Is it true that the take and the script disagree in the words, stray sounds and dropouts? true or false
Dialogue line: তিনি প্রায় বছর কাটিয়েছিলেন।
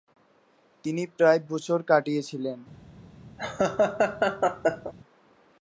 true